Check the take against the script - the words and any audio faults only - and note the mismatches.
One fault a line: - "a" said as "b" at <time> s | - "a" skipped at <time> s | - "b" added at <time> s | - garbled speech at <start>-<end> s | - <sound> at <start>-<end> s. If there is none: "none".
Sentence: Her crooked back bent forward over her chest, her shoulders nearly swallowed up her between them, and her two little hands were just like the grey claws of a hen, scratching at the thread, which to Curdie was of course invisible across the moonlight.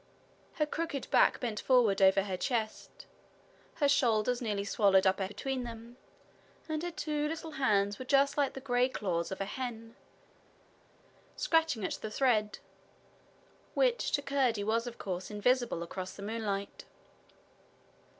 none